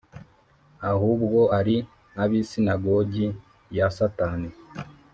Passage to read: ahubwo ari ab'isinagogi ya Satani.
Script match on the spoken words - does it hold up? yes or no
yes